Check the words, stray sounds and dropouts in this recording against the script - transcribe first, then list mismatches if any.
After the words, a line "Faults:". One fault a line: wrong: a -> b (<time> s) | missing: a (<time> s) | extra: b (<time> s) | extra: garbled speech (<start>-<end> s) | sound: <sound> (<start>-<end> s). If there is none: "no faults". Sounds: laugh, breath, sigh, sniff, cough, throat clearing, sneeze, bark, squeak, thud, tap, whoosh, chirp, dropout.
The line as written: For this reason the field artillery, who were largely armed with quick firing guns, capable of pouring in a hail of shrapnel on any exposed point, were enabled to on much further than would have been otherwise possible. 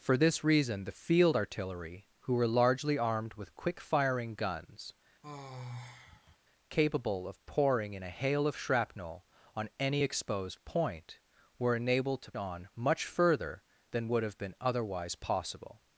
For this reason the field artillery, who were largely armed with quick firing guns, capable of pouring in a hail of shrapnel on any exposed point, were enabled to on much further than would have been otherwise possible.
Faults:
sound: sigh (5.2-6.4 s)